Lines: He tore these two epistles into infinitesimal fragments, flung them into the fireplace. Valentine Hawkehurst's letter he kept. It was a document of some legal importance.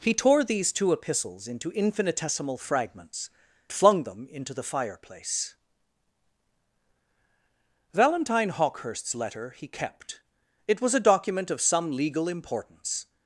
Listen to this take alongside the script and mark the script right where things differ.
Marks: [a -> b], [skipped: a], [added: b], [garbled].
He tore these two epistles into infinitesimal fragments, flung them into the fireplace. Valentine Hawkehurst's letter he kept. It was a document of some legal importance.